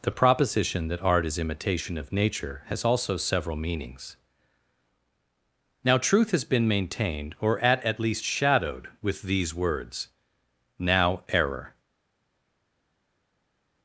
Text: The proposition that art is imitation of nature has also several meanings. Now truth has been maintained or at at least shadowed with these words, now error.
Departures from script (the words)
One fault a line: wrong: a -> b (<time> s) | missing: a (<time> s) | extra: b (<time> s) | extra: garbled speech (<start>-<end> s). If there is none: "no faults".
no faults